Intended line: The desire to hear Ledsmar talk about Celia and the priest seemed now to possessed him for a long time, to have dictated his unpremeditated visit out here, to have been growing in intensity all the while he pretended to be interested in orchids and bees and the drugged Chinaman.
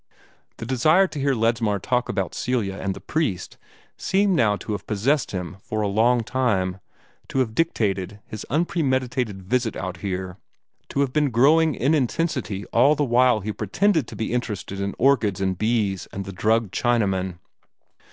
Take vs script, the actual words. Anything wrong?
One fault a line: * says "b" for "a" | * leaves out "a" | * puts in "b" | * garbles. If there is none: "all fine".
* puts in "have"